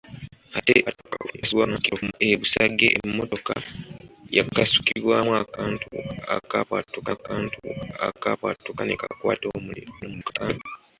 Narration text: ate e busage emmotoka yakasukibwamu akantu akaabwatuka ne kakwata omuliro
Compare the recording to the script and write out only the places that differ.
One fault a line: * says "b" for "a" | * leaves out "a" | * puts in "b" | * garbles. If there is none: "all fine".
* garbles
* puts in "akantu akaabwatuka"
* garbles